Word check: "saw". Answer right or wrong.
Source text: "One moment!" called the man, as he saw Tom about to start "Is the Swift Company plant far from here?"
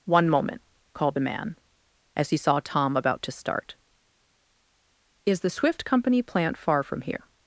right